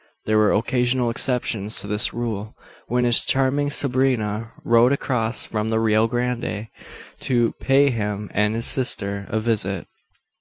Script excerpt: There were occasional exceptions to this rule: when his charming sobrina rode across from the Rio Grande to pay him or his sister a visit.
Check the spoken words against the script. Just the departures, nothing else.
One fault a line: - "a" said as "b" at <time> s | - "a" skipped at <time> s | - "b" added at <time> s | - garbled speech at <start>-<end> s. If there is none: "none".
- "or" said as "and" at 8.3 s